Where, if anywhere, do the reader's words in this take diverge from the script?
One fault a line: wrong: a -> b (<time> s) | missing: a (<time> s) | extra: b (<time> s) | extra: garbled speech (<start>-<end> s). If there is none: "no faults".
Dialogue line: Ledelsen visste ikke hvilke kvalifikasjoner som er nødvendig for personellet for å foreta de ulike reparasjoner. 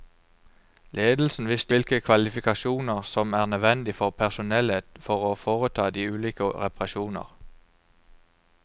missing: ikke (1.8 s)